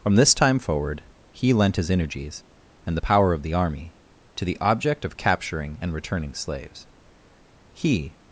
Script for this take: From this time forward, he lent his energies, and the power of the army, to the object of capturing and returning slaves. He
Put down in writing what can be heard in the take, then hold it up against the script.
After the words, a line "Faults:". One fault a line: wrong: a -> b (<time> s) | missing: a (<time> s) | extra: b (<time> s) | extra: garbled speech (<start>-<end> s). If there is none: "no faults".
From this time forward, he lent his energies, and the power of the army, to the object of capturing and returning slaves. He
Faults:
no faults